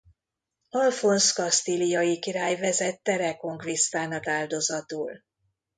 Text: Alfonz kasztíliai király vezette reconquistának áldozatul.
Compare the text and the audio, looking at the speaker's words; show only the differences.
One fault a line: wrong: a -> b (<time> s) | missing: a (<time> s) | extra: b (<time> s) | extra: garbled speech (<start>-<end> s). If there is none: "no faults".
no faults